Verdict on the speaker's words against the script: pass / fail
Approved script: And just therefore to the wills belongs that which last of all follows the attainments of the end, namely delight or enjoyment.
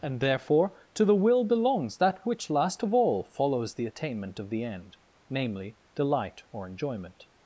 fail